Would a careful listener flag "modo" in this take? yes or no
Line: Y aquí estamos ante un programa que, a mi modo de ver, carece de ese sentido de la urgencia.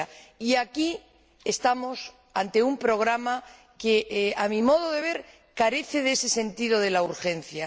no